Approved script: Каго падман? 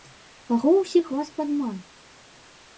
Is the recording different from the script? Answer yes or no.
yes